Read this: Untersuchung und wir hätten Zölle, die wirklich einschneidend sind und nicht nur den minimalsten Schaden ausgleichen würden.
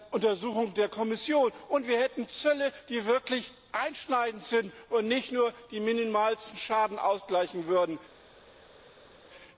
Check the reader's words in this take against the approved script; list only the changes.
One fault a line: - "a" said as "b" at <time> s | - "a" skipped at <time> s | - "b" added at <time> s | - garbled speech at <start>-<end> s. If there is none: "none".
- "der Kommission" added at 0.7 s